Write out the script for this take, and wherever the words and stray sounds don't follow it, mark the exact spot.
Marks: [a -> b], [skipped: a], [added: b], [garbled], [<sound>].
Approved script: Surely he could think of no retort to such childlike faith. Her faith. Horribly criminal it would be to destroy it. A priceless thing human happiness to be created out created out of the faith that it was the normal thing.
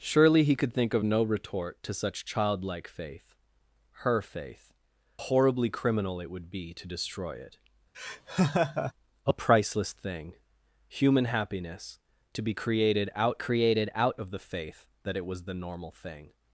Surely he could think of no retort to such childlike faith. Her faith. Horribly criminal it would be to destroy it. [laugh] A priceless thing human happiness to be created out created out of the faith that it was the normal thing.